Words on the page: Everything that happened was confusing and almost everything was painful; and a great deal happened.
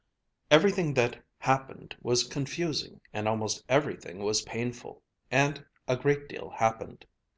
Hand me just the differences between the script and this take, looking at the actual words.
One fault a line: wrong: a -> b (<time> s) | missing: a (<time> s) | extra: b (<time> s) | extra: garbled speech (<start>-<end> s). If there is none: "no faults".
no faults